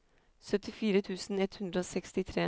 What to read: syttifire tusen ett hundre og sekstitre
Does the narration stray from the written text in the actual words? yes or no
no